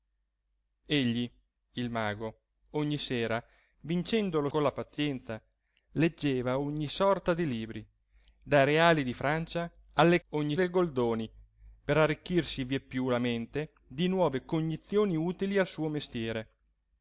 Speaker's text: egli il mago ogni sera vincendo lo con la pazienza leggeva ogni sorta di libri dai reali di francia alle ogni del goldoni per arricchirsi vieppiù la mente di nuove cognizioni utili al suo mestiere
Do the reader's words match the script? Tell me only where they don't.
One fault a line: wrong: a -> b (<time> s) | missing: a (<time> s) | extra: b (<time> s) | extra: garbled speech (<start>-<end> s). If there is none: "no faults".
no faults